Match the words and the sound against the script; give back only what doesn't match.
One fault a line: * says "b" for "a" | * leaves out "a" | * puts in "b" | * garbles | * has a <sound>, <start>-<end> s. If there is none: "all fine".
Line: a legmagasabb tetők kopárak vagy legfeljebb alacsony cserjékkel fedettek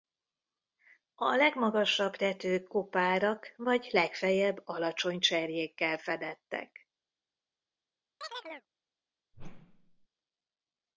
* has a chirp, 8.2-8.7 s
* has a whoosh, 9.3-10.1 s